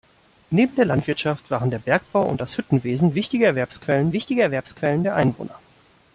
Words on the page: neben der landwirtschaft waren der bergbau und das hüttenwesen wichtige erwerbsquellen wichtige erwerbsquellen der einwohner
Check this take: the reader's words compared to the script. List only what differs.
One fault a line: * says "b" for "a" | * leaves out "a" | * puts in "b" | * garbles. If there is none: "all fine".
all fine